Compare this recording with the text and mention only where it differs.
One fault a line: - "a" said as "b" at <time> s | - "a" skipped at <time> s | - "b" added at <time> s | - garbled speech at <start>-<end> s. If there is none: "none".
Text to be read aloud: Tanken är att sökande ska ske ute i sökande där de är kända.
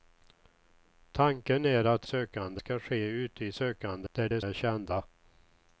none